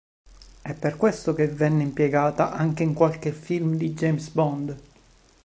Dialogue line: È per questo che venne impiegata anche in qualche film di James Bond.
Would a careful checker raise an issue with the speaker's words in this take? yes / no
no